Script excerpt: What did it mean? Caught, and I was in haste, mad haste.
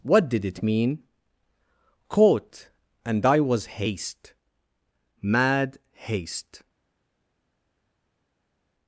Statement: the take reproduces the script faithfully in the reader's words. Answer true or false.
false